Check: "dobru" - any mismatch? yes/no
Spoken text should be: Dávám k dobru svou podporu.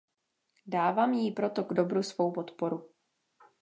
no